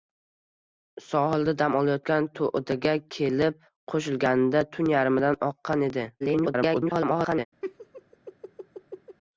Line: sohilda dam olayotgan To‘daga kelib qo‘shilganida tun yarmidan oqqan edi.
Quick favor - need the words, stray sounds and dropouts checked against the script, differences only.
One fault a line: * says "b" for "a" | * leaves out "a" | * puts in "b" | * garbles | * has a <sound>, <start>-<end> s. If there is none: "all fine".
* garbles
* has a laugh, 7.6-9.2 s